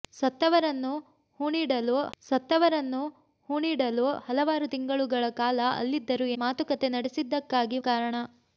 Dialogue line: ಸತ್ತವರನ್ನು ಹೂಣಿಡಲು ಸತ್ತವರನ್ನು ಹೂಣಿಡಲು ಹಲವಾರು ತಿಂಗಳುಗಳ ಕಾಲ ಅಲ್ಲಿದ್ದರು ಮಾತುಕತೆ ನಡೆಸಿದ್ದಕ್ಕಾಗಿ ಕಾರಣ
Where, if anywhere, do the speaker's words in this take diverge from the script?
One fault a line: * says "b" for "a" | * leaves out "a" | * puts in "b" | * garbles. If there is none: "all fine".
all fine